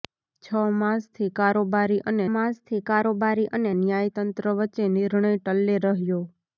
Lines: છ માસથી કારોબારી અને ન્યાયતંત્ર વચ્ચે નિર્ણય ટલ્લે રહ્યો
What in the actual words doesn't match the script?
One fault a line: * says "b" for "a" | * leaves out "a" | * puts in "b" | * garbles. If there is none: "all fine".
* puts in "માસથી કારોબારી અને"